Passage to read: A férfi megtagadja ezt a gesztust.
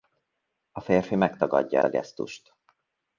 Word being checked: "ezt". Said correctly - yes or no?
no